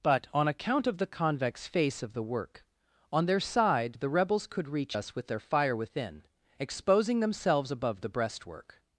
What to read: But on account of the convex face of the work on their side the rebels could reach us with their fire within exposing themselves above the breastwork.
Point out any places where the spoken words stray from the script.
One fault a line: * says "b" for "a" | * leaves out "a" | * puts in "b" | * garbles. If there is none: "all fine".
all fine